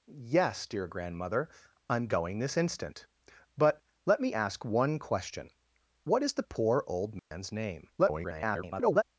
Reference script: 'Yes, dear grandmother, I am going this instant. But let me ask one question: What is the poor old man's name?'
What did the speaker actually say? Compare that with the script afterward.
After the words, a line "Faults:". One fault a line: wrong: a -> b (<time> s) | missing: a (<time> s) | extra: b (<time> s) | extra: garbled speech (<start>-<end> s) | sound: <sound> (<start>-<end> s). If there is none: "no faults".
'Yes, dear grandmother, I am going this instant. But let me ask one question: What is the poor old man's name?' [garbled]
Faults:
sound: dropout (7.2-7.3 s)
extra: garbled speech (8.0-9.0 s)